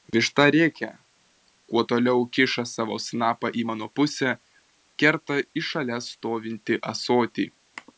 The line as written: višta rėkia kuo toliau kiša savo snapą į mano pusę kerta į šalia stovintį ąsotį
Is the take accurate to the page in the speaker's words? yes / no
yes